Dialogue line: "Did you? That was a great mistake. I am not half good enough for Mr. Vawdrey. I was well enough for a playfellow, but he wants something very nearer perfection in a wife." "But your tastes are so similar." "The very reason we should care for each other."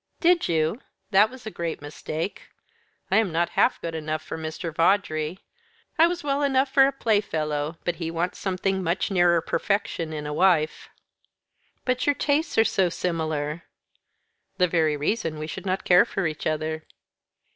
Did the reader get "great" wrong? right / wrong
right